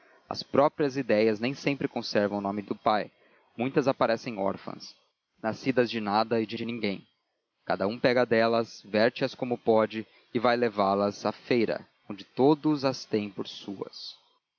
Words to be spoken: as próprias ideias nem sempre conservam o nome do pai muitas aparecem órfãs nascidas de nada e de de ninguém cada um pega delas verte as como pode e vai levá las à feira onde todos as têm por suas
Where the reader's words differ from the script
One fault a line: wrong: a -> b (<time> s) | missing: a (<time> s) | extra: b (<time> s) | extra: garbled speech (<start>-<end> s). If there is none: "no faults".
no faults